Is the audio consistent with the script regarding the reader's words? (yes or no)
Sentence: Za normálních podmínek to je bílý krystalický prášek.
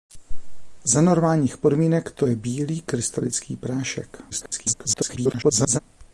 no